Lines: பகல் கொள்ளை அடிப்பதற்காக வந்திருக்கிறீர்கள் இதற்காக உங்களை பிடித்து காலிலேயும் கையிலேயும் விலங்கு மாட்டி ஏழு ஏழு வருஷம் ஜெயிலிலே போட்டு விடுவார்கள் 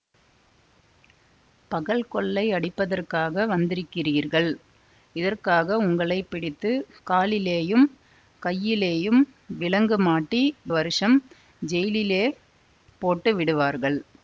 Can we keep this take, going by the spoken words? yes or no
no